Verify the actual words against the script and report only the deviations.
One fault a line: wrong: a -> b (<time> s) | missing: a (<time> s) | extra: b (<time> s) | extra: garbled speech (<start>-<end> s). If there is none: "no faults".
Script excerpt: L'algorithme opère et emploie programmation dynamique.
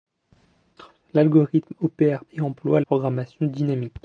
no faults